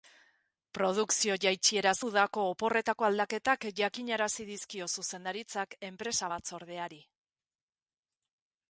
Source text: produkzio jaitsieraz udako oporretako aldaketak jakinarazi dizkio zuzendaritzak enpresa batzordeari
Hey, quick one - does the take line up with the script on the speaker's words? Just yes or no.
yes